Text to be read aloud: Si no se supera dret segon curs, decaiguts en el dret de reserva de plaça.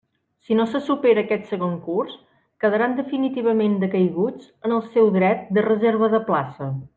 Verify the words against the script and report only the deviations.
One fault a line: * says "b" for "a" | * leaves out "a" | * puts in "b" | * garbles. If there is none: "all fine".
* says "aquest" for "dret"
* puts in "quedaran definitivament"
* puts in "seu"